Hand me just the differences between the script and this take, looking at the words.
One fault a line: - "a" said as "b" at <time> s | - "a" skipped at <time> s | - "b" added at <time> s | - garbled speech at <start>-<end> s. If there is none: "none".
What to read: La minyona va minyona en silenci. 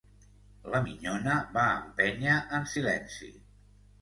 - "minyona" said as "empènyer" at 1.8 s